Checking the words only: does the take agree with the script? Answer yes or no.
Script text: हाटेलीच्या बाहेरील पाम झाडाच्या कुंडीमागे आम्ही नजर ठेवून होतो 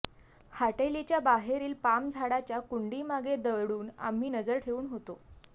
no